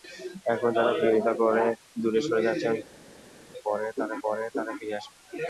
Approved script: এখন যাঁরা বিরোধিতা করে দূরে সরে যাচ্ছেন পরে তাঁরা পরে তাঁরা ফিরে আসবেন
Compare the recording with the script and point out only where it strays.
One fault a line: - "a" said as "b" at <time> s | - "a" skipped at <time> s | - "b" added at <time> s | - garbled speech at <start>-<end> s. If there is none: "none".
none